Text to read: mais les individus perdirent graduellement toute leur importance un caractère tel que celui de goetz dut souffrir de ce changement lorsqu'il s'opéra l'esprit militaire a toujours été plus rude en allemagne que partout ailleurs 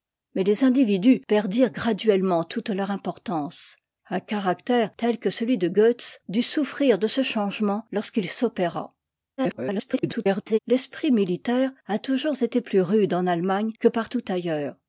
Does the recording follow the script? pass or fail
fail